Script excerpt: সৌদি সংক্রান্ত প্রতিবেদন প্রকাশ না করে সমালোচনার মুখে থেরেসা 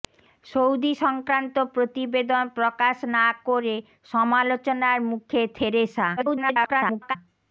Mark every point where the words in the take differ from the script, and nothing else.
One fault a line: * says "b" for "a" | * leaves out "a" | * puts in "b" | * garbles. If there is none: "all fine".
* garbles